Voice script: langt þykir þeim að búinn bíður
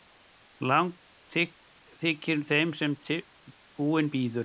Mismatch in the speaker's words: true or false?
true